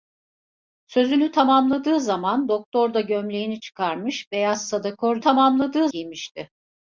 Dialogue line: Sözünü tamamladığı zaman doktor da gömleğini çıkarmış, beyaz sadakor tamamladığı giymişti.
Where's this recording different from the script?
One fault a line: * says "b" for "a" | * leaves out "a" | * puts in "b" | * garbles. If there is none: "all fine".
all fine